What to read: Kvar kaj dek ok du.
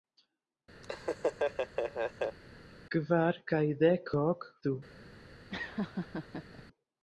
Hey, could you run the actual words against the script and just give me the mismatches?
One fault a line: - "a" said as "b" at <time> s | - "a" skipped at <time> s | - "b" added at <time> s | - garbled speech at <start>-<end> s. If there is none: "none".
none